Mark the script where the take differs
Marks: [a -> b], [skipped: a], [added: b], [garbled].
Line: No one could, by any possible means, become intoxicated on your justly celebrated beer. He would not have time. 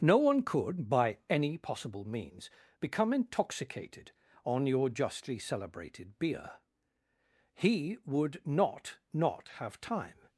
No one could, by any possible means, become intoxicated on your justly celebrated beer. He would not [added: not] have time.